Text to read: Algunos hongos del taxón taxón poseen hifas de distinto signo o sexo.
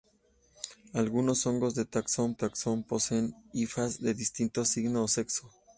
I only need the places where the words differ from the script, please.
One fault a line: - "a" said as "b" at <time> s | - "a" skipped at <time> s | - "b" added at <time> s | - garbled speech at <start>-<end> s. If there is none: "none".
none